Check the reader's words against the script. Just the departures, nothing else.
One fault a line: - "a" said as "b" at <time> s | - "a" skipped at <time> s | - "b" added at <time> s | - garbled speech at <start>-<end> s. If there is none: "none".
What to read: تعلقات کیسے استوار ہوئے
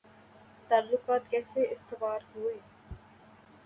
none